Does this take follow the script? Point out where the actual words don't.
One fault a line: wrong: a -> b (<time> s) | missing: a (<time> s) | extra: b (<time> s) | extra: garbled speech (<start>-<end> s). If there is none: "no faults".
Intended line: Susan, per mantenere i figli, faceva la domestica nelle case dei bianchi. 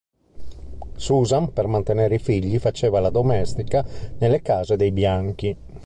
no faults